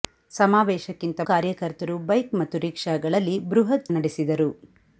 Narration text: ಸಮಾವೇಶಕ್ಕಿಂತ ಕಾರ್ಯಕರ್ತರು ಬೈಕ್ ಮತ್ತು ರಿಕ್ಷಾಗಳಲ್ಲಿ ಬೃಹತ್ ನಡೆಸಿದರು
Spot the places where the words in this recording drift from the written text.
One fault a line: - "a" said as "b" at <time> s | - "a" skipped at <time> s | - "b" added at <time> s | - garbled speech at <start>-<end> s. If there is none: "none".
none